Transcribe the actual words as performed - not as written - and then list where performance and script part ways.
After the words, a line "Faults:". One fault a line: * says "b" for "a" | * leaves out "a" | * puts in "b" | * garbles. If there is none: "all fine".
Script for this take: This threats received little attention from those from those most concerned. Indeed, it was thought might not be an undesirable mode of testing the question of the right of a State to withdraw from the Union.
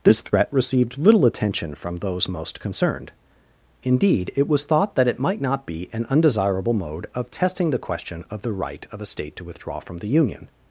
This threat received little attention from those most concerned. Indeed, it was thought that it might not be an undesirable mode of testing the question of the right of a State to withdraw from the Union.
Faults:
* says "threat" for "threats"
* leaves out "from those"
* puts in "that it"